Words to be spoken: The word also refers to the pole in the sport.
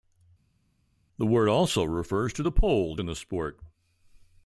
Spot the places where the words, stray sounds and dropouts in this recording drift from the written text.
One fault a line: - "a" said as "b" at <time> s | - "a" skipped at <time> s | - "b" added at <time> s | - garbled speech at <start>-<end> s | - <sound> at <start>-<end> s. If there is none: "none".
none